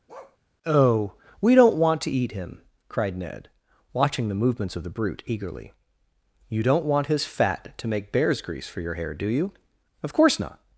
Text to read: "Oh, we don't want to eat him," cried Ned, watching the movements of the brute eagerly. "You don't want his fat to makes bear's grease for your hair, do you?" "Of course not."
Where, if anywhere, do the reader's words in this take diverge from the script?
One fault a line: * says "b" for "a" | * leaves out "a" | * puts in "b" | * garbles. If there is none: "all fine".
* says "make" for "makes"